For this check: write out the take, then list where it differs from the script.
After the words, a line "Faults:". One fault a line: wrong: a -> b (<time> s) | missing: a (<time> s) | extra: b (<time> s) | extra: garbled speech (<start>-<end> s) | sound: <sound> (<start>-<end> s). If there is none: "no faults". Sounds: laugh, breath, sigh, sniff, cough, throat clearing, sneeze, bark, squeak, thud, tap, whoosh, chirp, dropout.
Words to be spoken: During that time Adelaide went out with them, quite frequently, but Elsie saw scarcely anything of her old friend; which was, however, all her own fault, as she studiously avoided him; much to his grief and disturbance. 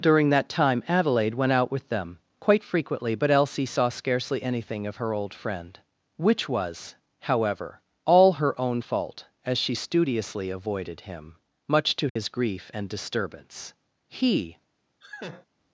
During that time Adelaide went out with them, quite frequently, but Elsie saw scarcely anything of her old friend; which was, however, all her own fault, as she studiously avoided him; much to his grief and disturbance. He
Faults:
sound: dropout (12.1-12.2 s)
extra: He (14.1 s)
sound: laugh (15.0-15.5 s)